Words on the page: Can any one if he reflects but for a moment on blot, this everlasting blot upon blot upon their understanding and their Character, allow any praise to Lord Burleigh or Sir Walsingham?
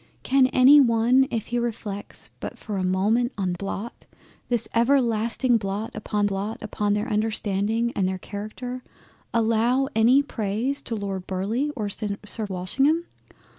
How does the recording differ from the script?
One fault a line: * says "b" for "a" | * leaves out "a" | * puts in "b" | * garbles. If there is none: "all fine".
all fine